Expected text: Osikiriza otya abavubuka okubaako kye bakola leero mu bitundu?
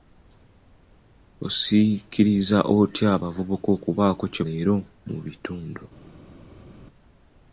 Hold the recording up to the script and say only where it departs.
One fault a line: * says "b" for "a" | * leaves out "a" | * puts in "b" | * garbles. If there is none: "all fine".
* leaves out "bakola"